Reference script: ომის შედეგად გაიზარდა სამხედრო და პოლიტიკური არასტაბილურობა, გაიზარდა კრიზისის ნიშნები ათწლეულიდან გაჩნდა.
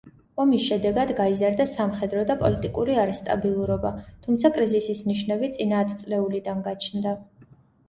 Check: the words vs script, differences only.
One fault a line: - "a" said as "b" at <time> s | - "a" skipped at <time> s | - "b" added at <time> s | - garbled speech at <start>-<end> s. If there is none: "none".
- "გაიზარდა" said as "თუმცა" at 4.3 s
- "წინა" added at 5.6 s